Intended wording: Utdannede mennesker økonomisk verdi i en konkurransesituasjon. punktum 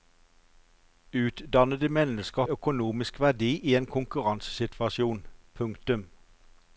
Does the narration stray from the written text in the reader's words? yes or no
no